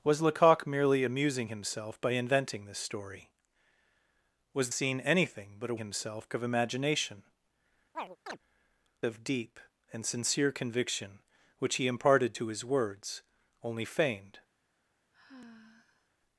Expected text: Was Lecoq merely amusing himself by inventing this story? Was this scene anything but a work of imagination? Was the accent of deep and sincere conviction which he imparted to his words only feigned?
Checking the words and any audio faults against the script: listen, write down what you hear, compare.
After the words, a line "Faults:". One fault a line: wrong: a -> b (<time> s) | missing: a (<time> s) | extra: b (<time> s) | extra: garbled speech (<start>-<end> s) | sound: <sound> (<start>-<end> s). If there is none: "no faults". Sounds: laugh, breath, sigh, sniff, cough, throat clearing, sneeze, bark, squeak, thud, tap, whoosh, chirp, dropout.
Was Lecoq merely amusing himself by inventing this story? Was scene anything but a himself of imagination? Of deep and sincere conviction which he imparted to his words only feigned?
Faults:
missing: this (4.7 s)
wrong: work -> himself (5.8 s)
missing: Was the accent (7.2 s)
sound: chirp (7.9-8.4 s)
sound: sigh (15.1-16.1 s)